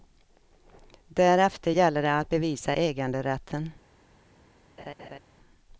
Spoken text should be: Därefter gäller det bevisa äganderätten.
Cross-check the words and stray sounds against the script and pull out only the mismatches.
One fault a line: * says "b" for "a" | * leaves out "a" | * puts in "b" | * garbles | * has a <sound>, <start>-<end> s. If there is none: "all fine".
* puts in "att"
* has a laugh, 4.8-5.2 s